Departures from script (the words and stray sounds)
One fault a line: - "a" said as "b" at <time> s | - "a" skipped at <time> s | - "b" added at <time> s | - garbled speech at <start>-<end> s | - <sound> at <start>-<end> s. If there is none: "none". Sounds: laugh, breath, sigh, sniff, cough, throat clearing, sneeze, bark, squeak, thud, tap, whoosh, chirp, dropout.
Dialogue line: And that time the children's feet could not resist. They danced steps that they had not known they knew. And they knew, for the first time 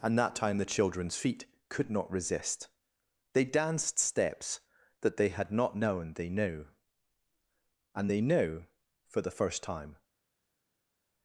none